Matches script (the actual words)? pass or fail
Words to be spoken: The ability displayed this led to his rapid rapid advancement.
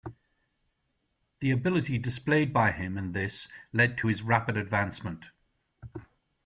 fail